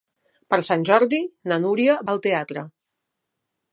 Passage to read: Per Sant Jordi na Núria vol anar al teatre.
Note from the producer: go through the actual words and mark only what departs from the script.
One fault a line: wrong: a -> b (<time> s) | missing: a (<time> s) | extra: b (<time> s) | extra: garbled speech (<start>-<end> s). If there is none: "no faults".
missing: vol anar (2.0 s)